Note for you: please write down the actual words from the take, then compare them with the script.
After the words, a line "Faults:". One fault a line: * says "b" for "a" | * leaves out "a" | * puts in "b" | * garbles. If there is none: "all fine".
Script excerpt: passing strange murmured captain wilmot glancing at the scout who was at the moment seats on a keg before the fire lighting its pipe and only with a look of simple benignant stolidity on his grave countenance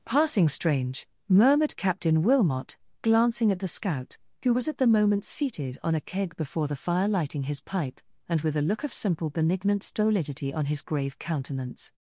passing strange murmured captain wilmot glancing at the scout who was at the moment seated on a keg before the fire lighting his pipe and with a look of simple benignant stolidity on his grave countenance
Faults:
* says "seated" for "seats"
* says "his" for "its"
* leaves out "only"